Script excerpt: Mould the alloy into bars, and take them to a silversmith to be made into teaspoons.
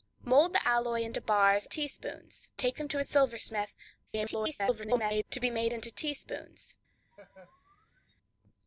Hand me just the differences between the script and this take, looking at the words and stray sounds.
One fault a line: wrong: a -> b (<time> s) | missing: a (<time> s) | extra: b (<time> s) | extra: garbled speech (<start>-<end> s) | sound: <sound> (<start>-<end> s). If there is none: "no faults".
wrong: and -> teaspoons (1.6 s)
extra: garbled speech (4.1-5.2 s)
sound: laugh (7.1-8.1 s)